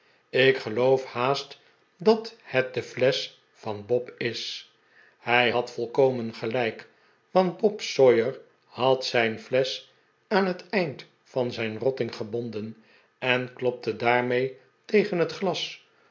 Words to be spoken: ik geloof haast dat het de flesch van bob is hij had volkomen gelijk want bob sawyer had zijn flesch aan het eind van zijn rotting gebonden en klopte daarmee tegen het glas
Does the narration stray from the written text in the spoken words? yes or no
no